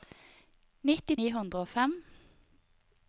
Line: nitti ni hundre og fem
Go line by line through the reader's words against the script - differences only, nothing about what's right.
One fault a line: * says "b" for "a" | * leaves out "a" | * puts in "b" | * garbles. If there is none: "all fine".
all fine